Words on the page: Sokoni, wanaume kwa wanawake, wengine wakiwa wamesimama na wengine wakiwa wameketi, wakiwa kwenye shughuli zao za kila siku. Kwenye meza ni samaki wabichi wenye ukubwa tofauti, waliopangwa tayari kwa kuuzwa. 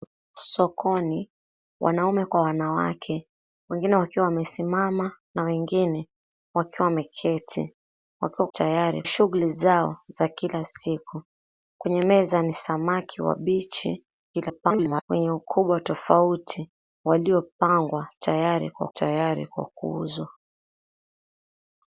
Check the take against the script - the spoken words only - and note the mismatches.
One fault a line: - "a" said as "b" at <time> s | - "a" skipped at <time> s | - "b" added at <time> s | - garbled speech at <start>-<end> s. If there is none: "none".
- "kwenye" said as "tayari" at 8.5 s
- garbled speech at 14.3-15.0 s
- "tayari kwa" added at 18.9 s